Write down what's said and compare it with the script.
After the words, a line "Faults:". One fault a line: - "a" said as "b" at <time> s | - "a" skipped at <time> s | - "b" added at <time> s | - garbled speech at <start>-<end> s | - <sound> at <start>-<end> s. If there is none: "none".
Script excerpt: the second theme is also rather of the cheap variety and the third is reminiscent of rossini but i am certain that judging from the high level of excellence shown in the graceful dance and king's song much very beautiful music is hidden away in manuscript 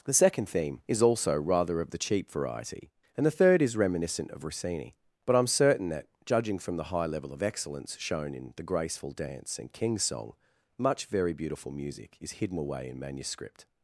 the second theme is also rather of the cheap variety and the third is reminiscent of rossini but i am certain that judging from the high level of excellence shown in the graceful dance and king's song much very beautiful music is hidden away in manuscript
Faults:
none